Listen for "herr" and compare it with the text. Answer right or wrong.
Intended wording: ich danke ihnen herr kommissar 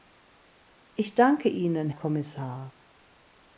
wrong